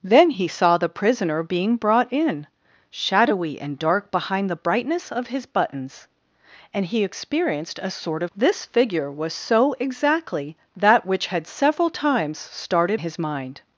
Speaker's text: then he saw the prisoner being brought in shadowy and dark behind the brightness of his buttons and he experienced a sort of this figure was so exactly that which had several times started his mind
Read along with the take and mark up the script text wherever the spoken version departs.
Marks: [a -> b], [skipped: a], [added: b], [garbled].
then he saw the prisoner being brought in shadowy and dark behind the brightness of his buttons and he experienced a sort of this figure was so exactly that which had several times started his mind